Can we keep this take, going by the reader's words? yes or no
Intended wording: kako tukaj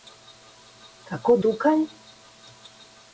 yes